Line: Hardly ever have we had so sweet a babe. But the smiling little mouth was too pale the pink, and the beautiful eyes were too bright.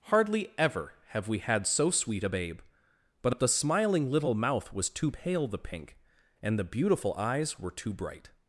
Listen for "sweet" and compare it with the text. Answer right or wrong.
right